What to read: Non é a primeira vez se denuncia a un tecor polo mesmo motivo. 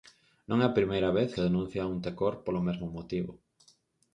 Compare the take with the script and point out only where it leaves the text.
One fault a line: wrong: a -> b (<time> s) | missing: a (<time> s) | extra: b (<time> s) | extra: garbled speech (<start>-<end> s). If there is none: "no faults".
no faults